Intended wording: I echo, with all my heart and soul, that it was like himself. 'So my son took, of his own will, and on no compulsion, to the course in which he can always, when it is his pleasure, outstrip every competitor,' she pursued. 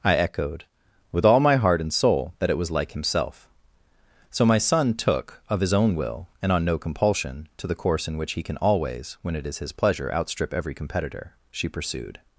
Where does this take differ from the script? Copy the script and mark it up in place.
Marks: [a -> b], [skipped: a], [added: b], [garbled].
I [echo, -> echoed] with all my heart and soul, that it was like himself. 'So my son took, of his own will, and on no compulsion, to the course in which he can always, when it is his pleasure, outstrip every competitor,' she pursued.